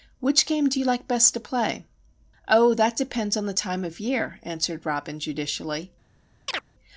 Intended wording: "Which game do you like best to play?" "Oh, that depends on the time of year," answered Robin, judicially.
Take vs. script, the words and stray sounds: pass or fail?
fail